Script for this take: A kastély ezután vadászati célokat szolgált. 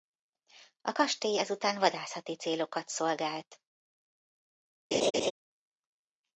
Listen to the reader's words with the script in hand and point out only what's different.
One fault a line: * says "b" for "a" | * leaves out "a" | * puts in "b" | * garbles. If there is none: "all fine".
all fine